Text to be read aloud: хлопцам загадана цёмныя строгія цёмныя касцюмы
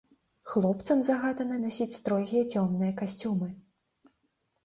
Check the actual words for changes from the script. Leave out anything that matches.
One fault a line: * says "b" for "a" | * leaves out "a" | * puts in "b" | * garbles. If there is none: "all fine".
* says "насіць" for "цёмныя"